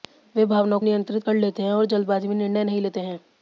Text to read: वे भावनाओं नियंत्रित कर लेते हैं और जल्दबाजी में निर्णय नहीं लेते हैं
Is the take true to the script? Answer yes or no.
yes